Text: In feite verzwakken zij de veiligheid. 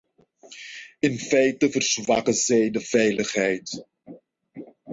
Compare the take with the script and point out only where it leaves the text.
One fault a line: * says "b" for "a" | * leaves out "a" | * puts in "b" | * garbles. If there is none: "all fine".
all fine